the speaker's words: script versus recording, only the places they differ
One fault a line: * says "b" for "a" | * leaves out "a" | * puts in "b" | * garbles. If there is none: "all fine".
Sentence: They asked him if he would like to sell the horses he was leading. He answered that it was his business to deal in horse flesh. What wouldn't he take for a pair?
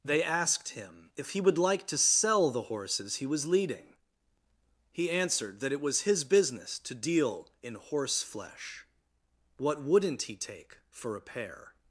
all fine